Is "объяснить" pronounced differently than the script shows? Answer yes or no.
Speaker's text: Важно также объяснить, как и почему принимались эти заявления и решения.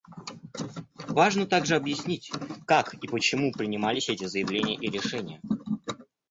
no